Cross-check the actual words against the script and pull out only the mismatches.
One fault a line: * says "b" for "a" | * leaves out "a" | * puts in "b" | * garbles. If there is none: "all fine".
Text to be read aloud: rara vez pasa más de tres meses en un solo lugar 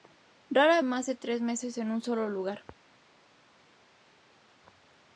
* leaves out "vez pasa"